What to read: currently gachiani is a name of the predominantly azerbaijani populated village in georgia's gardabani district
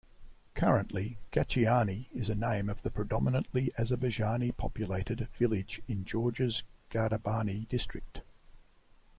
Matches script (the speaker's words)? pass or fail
pass